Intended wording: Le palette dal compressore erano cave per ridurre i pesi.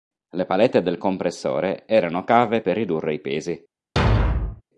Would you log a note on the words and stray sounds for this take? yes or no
yes